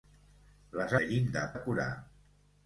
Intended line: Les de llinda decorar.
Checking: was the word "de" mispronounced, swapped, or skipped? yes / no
no